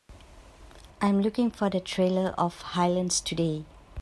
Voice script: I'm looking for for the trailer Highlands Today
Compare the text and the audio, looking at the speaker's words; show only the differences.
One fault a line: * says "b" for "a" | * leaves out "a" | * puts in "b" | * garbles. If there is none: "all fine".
* leaves out "for"
* puts in "of"